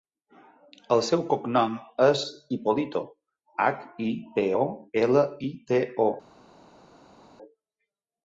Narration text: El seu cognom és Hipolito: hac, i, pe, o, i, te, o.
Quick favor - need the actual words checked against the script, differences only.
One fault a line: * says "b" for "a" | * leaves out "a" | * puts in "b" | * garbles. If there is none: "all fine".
* puts in "ela"